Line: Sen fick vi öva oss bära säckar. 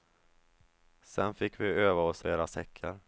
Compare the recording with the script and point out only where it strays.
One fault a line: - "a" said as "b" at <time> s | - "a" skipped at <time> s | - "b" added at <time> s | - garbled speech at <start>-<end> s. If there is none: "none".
none